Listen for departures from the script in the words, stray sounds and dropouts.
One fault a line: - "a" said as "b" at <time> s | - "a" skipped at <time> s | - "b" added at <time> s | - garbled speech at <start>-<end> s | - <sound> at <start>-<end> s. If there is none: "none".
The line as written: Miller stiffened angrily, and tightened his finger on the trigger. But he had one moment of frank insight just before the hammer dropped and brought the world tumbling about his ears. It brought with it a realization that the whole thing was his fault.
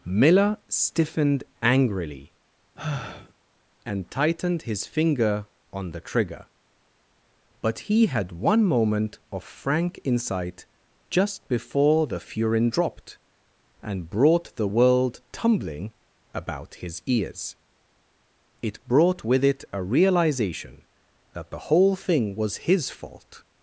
- sigh at 2.8-3.3 s
- "hammer" said as "furin" at 12.2 s